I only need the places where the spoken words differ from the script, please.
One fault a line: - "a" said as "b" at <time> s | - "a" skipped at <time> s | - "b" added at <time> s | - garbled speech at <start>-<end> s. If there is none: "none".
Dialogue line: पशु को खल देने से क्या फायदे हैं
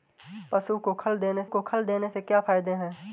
- "को खल देने" added at 1.5 s